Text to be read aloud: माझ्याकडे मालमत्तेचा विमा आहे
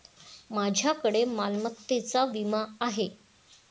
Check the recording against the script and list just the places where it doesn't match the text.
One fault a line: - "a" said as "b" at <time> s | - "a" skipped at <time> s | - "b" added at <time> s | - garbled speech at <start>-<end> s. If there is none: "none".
none